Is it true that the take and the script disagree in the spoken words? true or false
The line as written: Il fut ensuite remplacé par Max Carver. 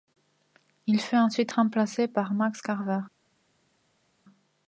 false